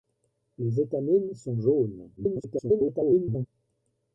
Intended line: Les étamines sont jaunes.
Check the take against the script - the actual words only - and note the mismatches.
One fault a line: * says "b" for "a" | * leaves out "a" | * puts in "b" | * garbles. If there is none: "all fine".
* garbles